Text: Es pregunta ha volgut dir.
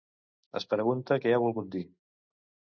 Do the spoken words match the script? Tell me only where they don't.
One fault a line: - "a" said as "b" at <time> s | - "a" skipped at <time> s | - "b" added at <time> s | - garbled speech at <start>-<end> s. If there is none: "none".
- "què" added at 1.3 s